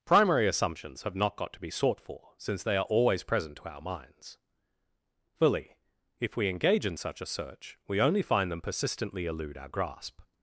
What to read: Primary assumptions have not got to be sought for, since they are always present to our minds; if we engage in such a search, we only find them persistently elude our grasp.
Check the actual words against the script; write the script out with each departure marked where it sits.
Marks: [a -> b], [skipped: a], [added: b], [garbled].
Primary assumptions have not got to be sought for, since they are always present to our minds; [added: fully] if we engage in such a search, we only find them persistently elude our grasp.